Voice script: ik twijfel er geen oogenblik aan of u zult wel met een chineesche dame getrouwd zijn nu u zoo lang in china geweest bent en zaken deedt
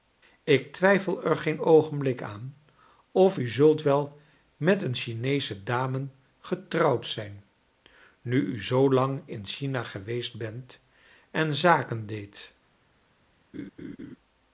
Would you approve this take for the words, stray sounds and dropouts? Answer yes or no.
no